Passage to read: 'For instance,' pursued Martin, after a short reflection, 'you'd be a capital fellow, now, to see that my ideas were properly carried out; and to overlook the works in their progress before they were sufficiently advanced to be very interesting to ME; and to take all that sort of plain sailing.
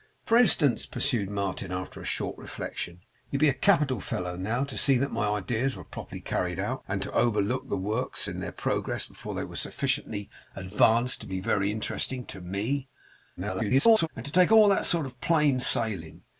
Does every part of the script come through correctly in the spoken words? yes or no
no